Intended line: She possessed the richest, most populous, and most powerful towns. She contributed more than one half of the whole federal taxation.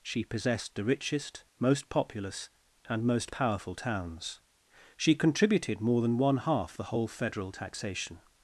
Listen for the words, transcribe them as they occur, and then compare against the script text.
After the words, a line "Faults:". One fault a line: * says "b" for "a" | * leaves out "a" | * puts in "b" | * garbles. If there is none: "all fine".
She possessed the richest, most populous, and most powerful towns. She contributed more than one half the whole federal taxation.
Faults:
* leaves out "of"